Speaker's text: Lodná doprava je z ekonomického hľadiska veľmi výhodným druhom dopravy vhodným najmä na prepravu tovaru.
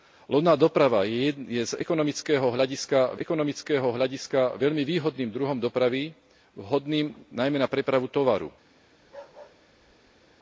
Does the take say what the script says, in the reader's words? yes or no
no